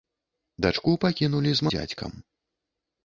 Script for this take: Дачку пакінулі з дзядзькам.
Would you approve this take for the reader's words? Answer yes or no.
yes